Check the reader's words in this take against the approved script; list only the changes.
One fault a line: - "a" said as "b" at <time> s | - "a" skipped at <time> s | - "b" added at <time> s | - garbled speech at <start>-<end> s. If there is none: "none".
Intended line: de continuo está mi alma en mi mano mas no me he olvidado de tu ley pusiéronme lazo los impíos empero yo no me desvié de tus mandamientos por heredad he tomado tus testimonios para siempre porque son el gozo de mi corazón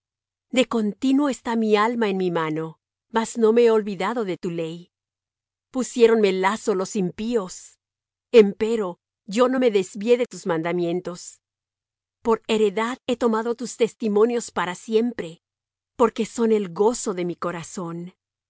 none